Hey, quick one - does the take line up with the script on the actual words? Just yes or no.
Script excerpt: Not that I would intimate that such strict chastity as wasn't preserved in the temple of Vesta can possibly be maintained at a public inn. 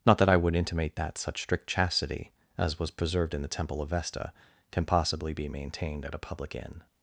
no